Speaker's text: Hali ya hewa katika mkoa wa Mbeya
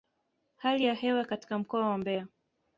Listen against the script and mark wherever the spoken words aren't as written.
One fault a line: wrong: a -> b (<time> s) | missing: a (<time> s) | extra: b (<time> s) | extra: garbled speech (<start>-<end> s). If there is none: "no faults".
no faults